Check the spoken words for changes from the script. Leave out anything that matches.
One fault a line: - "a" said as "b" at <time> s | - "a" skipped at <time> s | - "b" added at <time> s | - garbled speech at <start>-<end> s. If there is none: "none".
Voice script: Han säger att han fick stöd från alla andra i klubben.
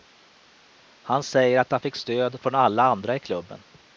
none